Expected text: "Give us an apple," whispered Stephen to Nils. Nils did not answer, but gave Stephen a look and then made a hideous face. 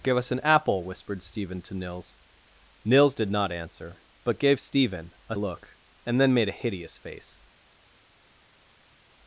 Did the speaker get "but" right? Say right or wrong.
right